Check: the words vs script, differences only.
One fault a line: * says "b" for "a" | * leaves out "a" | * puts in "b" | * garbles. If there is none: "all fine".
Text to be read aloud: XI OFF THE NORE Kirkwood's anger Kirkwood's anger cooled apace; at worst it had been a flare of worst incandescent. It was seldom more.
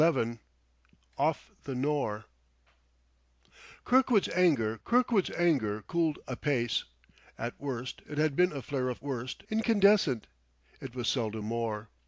all fine